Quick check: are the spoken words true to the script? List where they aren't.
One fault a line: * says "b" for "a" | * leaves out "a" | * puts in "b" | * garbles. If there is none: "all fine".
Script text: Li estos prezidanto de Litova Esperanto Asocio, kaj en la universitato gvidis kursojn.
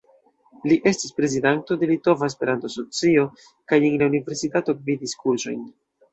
* says "estis" for "estos"